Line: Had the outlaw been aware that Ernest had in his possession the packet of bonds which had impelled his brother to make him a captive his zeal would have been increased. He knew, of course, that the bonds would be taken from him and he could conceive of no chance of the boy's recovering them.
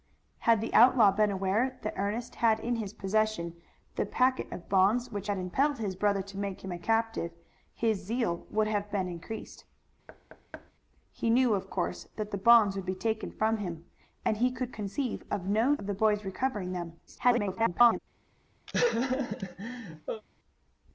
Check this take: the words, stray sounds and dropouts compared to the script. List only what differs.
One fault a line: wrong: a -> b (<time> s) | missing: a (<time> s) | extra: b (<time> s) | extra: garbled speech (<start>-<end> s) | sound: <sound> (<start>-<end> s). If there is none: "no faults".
sound: thud (10.1-10.7 s)
missing: chance (15.8 s)
extra: garbled speech (17.1-18.0 s)
sound: laugh (18.7-20.2 s)